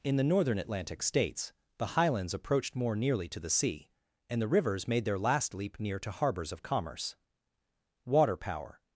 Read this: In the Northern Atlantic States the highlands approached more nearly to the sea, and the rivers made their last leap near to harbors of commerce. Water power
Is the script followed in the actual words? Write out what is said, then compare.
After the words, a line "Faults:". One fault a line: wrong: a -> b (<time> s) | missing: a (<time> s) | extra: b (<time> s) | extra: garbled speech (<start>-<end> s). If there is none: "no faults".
In the Northern Atlantic States the highlands approached more nearly to the sea, and the rivers made their last leap near to harbors of commerce. Water power
Faults:
no faults